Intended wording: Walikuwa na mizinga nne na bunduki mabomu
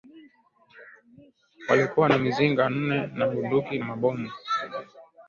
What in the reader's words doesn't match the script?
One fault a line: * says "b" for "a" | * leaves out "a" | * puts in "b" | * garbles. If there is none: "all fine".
all fine